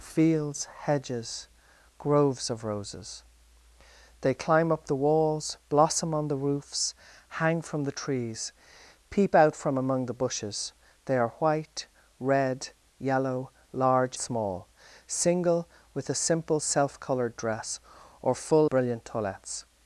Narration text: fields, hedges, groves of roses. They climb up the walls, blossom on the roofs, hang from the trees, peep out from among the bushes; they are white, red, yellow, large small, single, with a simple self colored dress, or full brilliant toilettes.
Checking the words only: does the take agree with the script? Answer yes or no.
yes